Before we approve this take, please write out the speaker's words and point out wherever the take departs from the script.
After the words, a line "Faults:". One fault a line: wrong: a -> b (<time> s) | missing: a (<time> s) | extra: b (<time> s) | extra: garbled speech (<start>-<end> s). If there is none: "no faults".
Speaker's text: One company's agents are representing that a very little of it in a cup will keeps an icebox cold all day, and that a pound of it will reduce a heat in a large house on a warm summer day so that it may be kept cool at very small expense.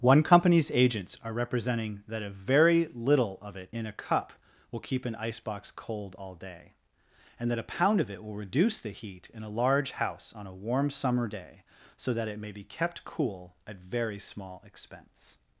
One company's agents are representing that a very little of it in a cup will keep an icebox cold all day, and that a pound of it will reduce the heat in a large house on a warm summer day so that it may be kept cool at very small expense.
Faults:
wrong: keeps -> keep (4.8 s)
wrong: a -> the (8.8 s)